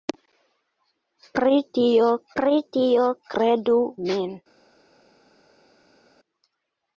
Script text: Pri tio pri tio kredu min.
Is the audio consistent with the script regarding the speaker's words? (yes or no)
yes